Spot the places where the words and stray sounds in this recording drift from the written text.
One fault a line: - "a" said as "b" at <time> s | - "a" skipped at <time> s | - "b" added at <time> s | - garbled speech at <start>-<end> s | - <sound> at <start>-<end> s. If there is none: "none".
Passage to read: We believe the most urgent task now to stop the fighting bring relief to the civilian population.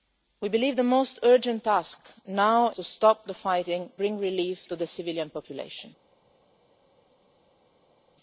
none